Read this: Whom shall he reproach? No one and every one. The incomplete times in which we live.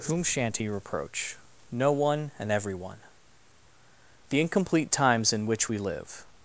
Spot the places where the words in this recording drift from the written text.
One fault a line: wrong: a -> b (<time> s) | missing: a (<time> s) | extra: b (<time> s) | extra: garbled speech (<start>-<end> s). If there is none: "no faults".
wrong: shall -> shan't (0.2 s)